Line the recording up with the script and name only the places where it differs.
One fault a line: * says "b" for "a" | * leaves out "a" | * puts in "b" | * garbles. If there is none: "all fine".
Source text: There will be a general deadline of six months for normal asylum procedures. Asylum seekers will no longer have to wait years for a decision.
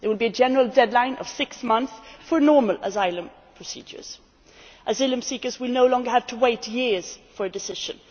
all fine